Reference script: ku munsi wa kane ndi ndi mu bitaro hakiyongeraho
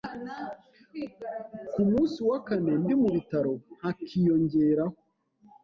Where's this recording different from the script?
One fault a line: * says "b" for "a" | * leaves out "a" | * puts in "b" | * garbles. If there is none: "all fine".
* leaves out "ndi"